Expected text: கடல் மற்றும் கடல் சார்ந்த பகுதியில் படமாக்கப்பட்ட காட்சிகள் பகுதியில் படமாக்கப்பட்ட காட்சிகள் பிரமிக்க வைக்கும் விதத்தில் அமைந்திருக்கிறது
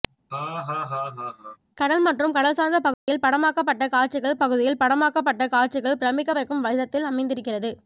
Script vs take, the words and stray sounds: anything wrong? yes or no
yes